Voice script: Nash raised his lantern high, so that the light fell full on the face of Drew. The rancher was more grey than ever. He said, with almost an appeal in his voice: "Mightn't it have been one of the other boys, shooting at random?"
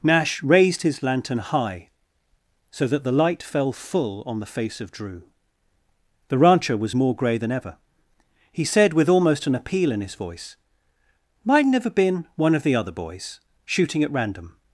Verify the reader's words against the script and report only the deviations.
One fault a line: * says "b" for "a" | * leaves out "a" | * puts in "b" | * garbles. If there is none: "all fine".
* leaves out "it"